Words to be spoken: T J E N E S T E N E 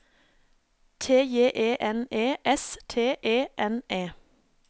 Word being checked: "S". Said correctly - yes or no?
yes